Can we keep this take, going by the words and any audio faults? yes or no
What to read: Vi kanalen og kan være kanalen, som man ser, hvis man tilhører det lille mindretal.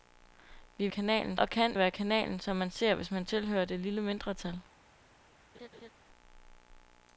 no